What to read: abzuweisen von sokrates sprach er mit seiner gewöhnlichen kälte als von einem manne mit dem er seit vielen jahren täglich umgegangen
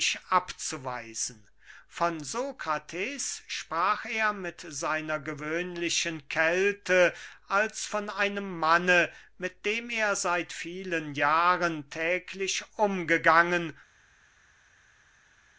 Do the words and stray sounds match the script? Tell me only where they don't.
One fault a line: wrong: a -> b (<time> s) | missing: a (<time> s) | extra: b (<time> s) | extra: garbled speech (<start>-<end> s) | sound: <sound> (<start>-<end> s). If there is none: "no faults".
no faults